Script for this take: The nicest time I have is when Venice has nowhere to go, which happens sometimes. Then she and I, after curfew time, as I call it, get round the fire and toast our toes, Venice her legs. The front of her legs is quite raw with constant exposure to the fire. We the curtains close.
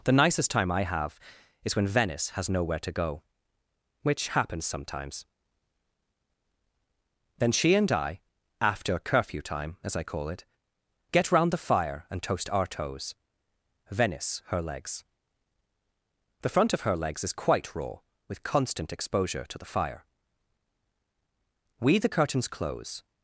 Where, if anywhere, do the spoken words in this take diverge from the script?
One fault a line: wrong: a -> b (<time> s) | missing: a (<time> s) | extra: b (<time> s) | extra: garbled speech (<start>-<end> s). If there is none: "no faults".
no faults